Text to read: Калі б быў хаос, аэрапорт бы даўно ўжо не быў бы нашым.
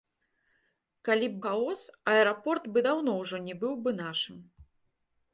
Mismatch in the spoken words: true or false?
true